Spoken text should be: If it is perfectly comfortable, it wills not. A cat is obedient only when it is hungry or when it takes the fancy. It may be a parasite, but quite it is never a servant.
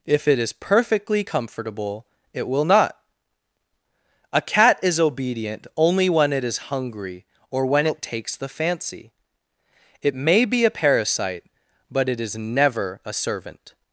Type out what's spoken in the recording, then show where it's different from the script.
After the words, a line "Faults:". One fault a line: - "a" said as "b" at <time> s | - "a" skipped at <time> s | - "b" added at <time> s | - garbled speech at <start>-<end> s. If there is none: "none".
If it is perfectly comfortable, it will not. A cat is obedient only when it is hungry or when it takes the fancy. It may be a parasite, but it is never a servant.
Faults:
- "wills" said as "will" at 2.5 s
- "quite" skipped at 12.1 s